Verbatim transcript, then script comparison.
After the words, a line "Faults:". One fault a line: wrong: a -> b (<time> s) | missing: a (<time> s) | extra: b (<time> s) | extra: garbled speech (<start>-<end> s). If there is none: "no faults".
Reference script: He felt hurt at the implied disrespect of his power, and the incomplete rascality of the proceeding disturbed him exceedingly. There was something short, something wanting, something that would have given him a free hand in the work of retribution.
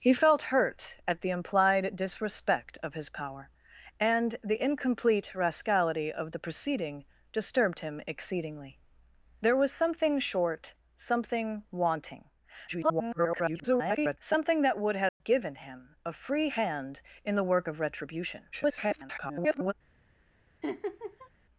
He felt hurt at the implied disrespect of his power, and the incomplete rascality of the proceeding disturbed him exceedingly. There was something short, something wanting, [garbled] something that would have given him a free hand in the work of retribution. [garbled]
Faults:
extra: garbled speech (12.7-14.2 s)
extra: garbled speech (18.5-19.7 s)